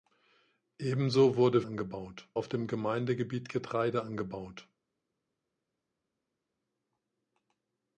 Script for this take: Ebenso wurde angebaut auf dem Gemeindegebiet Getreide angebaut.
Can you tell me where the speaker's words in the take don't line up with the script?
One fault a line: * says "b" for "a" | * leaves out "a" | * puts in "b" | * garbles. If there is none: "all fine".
all fine